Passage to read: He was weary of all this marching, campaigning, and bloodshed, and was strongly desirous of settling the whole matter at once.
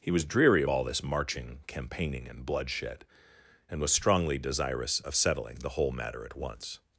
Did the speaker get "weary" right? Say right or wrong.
wrong